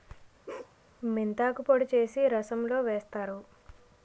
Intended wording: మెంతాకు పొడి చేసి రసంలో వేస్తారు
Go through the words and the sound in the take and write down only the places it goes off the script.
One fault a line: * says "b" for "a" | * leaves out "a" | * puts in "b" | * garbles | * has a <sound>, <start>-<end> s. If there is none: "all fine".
* has a bark, 0.5-0.8 s